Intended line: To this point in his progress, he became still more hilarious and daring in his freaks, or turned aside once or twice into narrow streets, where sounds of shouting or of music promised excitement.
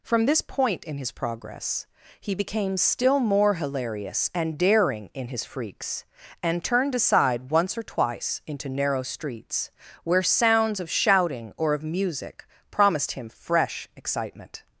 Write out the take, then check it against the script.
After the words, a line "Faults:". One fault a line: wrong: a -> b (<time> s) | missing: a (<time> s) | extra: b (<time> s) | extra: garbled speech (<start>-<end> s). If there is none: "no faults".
From this point in his progress, he became still more hilarious and daring in his freaks, and turned aside once or twice into narrow streets, where sounds of shouting or of music promised him fresh excitement.
Faults:
wrong: To -> From (0.0 s)
wrong: or -> and (6.4 s)
extra: him fresh (13.1 s)